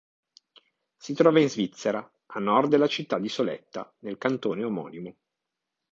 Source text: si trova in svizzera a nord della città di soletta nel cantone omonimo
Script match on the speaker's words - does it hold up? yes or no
yes